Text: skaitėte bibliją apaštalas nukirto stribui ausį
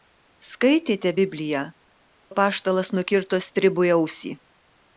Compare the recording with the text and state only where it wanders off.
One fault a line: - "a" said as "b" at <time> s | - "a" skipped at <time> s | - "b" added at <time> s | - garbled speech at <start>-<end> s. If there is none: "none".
none